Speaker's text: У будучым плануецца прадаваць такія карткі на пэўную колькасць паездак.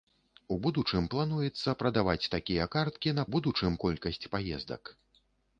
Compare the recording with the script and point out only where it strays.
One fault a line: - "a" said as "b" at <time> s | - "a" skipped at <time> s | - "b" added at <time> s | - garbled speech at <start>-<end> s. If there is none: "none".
- "пэўную" said as "будучым" at 3.3 s